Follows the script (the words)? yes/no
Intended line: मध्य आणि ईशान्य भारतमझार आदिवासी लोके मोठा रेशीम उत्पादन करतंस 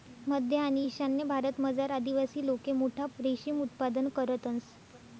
yes